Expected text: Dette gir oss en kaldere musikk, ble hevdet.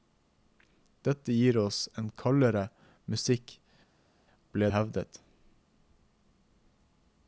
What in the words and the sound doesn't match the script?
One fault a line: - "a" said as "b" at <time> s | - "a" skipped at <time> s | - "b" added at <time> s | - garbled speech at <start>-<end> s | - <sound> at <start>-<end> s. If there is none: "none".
none